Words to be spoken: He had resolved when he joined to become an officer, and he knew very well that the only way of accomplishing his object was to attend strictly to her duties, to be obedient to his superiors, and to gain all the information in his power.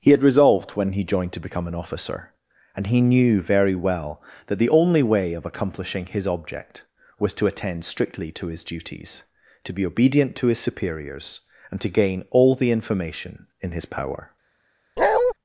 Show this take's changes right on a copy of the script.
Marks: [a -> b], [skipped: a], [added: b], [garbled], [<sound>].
He had resolved when he joined to become an officer, and he knew very well that the only way of accomplishing his object was to attend strictly to [her -> his] duties, to be obedient to his superiors, and to gain all the information in his power. [bark]